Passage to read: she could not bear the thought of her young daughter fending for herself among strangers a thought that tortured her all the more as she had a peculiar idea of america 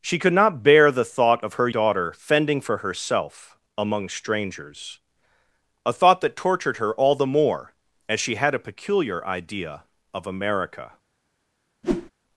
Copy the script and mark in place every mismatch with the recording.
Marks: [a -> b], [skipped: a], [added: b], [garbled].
she could not bear the thought of her [skipped: young] daughter fending for herself among strangers a thought that tortured her all the more as she had a peculiar idea of america